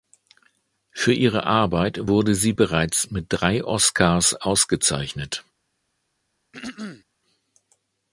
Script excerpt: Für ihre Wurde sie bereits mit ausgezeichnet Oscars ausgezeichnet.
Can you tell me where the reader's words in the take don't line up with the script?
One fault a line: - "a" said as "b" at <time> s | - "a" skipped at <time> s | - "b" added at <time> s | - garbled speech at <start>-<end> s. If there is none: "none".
- "Arbeit" added at 1.4 s
- "ausgezeichnet" said as "drei" at 3.3 s